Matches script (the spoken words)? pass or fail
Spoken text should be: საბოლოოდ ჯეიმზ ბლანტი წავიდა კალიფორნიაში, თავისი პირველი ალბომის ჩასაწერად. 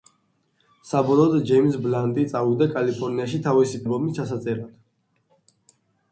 fail